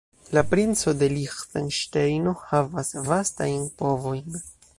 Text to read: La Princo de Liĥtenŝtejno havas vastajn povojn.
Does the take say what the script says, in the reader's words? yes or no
yes